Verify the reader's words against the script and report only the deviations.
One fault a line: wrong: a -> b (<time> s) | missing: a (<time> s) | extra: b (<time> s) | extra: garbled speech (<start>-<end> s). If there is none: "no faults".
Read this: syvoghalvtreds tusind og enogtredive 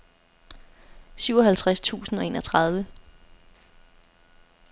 no faults